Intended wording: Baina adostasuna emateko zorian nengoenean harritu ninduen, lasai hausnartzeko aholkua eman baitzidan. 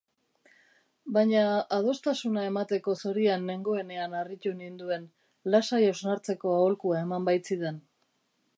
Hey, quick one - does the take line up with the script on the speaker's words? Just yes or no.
yes